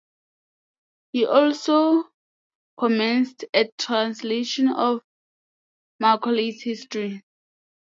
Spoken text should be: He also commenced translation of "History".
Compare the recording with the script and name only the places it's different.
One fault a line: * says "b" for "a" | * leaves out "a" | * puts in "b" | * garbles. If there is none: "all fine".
* puts in "a"
* puts in "Macaulay's"